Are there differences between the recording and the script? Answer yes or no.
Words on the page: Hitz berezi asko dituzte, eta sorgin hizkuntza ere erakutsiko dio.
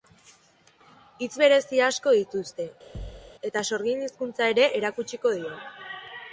no